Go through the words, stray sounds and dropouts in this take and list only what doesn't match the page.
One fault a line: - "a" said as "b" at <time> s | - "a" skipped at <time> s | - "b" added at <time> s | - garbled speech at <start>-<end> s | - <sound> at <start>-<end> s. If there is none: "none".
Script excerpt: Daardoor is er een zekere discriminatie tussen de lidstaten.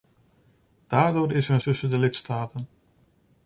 - "zekere discriminatie" skipped at 1.6 s